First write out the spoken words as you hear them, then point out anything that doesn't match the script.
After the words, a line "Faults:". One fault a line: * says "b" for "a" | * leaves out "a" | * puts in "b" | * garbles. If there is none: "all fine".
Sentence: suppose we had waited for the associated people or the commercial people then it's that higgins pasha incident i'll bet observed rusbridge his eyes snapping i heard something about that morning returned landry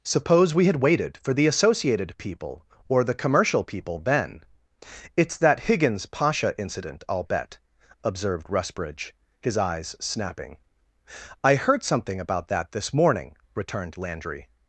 suppose we had waited for the associated people or the commercial people then it's that higgins pasha incident i'll bet observed rusbridge his eyes snapping i heard something about that this morning returned landry
Faults:
* puts in "this"